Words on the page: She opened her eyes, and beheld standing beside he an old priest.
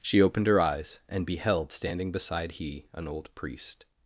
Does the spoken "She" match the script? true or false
true